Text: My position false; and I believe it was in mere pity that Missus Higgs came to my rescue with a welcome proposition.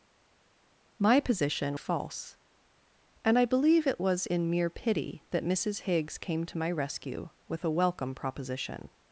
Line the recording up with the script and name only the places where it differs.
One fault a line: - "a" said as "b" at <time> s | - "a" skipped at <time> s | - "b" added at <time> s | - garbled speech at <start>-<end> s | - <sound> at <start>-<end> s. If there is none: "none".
none